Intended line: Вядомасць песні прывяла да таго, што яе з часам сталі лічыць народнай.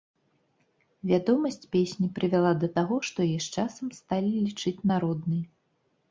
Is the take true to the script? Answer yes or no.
yes